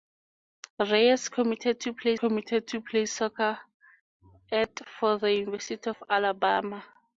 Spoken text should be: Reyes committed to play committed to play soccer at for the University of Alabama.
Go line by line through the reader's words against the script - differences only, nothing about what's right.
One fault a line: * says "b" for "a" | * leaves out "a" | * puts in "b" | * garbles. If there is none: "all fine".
all fine